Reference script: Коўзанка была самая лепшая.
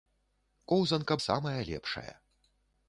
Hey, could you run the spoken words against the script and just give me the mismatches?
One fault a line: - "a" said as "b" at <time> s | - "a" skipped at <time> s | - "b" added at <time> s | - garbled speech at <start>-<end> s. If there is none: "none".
- "была" skipped at 1.2 s